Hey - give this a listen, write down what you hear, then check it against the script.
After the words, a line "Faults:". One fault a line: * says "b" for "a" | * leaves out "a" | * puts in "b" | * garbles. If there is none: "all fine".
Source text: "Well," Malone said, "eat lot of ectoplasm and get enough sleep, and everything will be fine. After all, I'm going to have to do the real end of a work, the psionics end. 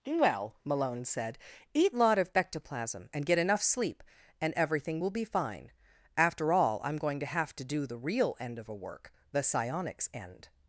"Well," Malone said, "eat lot of ectoplasm and get enough sleep, and everything will be fine. After all, I'm going to have to do the real end of a work, the psionics end.
Faults:
all fine